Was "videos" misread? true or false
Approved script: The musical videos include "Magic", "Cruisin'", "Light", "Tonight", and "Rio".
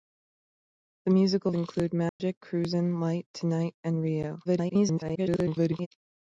true